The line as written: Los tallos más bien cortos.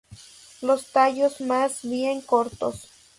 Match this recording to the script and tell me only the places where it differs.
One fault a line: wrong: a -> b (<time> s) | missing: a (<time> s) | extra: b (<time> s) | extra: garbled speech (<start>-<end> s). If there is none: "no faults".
no faults